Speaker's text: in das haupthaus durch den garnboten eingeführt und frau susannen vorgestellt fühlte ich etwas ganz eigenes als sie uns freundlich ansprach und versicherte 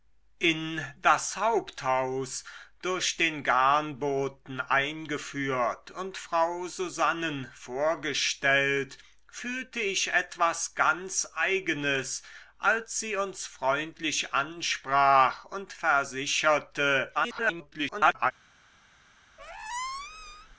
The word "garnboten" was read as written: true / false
true